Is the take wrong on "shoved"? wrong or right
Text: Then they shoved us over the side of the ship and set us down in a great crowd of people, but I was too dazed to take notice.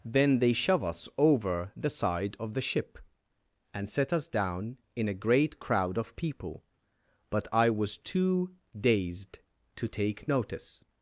wrong